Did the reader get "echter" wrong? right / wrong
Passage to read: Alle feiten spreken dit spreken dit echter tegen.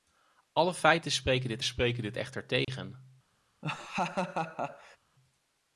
right